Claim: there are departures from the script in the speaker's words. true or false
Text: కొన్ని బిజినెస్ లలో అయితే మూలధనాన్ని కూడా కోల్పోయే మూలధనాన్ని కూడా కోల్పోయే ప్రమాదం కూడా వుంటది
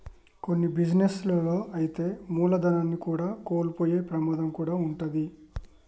true